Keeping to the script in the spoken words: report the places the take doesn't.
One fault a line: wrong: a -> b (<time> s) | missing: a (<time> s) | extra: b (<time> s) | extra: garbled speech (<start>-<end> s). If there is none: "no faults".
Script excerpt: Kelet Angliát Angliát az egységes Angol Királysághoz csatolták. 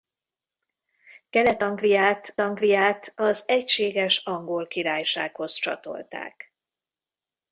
no faults